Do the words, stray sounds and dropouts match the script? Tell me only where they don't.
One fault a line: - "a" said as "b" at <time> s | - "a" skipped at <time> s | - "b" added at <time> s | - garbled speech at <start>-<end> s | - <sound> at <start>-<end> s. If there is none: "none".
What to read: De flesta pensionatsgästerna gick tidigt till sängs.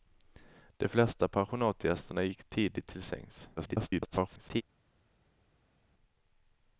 - garbled speech at 3.6-4.6 s